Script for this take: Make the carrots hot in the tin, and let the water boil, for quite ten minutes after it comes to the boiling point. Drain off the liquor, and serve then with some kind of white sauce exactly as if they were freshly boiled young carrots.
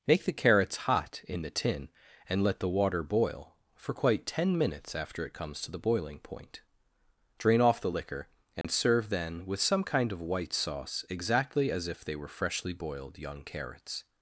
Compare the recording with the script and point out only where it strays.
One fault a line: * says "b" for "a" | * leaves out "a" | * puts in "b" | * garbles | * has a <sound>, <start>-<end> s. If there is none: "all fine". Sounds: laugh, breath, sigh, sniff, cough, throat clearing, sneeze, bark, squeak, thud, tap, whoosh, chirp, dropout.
* has a dropout, 8.6-8.6 s